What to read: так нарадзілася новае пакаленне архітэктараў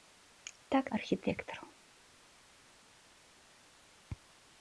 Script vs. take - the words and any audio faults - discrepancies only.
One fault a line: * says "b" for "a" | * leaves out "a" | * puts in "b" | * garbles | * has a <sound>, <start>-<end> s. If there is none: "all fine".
* leaves out "нарадзілася новае пакаленне"